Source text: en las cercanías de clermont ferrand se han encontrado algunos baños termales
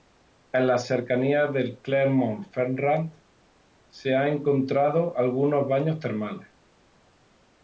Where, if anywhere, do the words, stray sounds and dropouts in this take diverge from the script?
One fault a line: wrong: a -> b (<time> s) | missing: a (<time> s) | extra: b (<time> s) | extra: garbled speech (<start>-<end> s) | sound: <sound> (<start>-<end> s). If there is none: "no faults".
no faults